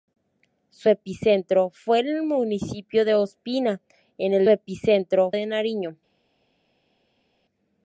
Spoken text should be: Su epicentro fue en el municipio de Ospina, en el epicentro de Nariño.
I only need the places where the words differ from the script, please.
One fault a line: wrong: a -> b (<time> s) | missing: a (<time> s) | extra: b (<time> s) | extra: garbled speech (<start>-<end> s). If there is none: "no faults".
no faults